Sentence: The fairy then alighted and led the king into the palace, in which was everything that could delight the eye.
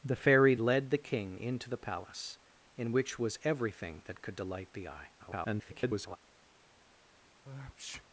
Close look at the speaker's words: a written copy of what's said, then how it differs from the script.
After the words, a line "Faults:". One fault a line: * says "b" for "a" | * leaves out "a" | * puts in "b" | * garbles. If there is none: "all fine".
The fairy led the king into the palace, in which was everything that could delight the eye. [garbled]
Faults:
* leaves out "then alighted and"
* garbles